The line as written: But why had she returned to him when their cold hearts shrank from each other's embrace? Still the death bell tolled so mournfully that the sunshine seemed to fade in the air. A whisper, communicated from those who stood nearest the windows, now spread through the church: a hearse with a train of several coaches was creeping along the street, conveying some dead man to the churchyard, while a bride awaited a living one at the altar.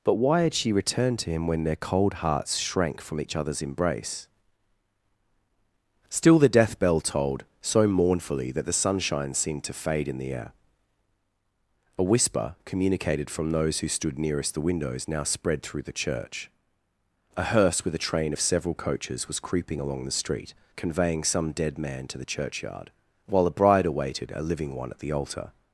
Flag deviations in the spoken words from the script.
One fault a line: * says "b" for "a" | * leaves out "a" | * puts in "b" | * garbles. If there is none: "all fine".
all fine